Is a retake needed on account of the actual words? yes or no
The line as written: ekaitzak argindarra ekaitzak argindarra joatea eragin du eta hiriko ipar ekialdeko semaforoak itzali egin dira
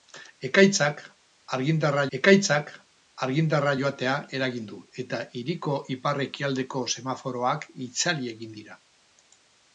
no